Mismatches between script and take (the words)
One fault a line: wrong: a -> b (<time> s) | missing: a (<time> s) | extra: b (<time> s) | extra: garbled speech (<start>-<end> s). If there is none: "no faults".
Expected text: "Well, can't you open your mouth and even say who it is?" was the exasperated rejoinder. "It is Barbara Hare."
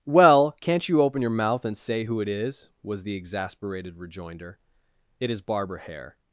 missing: even (1.8 s)